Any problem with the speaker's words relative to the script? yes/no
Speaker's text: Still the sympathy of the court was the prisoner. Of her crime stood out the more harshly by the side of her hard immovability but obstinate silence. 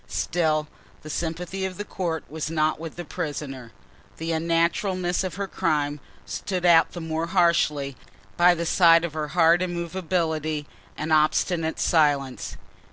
yes